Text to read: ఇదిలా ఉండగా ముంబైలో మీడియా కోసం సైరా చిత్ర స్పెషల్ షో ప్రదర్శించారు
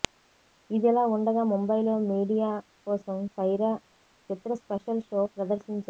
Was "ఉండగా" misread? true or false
false